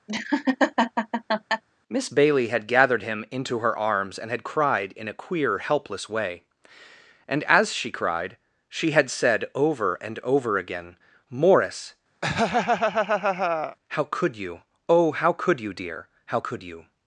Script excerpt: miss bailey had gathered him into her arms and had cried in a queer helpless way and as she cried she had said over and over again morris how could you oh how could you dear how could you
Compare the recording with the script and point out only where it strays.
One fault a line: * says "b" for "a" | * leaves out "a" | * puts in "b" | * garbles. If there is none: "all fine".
all fine